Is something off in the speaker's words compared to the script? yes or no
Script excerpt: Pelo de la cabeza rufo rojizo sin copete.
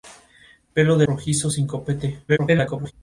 yes